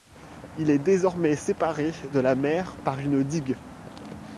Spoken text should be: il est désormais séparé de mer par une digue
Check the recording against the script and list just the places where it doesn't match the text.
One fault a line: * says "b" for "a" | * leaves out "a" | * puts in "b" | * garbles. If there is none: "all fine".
* puts in "la"